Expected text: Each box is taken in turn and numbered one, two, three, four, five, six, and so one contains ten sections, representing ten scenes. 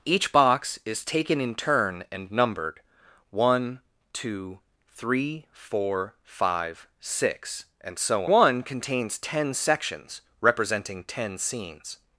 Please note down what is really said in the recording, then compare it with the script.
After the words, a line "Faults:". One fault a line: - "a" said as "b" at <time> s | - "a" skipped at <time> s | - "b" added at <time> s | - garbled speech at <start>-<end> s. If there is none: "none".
Each box is taken in turn and numbered one, two, three, four, five, six, and so one contains ten sections, representing ten scenes.
Faults:
none